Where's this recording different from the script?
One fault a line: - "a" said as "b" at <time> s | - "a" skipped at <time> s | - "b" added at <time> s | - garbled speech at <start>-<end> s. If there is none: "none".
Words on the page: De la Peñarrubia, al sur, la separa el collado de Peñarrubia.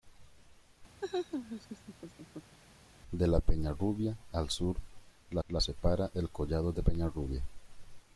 - "la" added at 5.5 s